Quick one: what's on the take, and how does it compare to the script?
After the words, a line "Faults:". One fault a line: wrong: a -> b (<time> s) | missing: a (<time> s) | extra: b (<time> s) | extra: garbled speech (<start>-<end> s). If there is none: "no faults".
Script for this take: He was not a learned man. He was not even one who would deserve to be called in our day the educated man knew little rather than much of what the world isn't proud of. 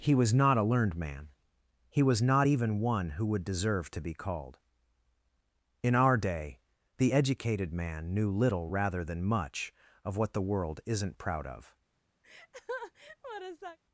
He was not a learned man. He was not even one who would deserve to be called in our day the educated man knew little rather than much of what the world isn't proud of.
Faults:
no faults